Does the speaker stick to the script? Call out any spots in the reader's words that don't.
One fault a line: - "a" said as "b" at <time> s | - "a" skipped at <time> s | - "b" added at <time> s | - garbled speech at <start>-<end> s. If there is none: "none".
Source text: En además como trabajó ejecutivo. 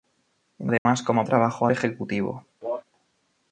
none